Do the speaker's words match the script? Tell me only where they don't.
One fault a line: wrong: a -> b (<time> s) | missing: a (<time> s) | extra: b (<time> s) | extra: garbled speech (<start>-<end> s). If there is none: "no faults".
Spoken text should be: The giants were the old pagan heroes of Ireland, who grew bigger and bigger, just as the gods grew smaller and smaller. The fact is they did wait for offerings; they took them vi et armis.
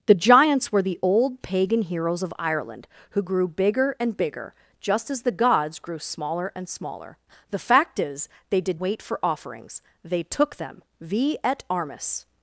no faults